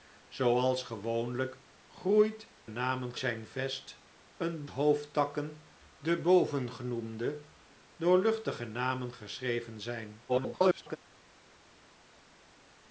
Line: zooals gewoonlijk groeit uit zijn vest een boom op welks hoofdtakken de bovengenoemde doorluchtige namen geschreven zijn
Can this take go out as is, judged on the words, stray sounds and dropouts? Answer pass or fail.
fail